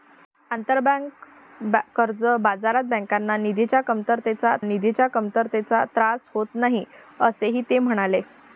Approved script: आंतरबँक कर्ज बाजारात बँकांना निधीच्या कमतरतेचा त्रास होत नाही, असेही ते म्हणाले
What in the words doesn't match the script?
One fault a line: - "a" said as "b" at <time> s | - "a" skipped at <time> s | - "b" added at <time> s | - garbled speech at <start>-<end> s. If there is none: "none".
- "निधीच्या कमतरतेचा" added at 4.6 s